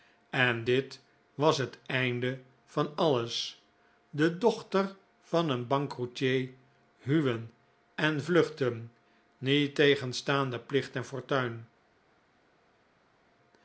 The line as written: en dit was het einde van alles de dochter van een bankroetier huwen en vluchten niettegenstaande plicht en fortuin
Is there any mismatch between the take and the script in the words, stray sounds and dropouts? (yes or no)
no